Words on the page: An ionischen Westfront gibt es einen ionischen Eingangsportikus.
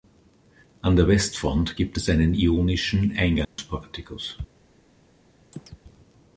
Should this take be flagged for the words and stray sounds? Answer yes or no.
yes